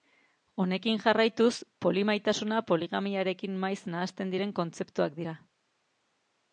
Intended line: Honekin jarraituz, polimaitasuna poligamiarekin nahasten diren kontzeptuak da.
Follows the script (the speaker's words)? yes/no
no